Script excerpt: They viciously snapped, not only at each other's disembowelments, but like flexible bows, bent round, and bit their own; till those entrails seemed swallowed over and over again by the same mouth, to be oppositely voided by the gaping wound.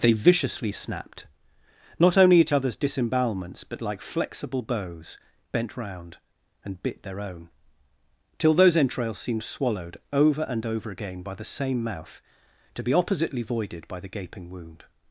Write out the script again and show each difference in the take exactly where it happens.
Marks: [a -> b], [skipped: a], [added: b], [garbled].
They viciously snapped, not only at [skipped: each] other's disembowelments, but like flexible bows, bent round, and bit their own; till those entrails seemed swallowed over and over again by the same mouth, to be oppositely voided by the gaping wound.